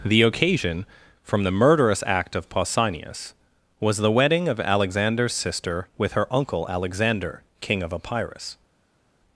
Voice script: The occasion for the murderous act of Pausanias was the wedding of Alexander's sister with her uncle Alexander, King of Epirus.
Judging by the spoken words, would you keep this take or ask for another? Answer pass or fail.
fail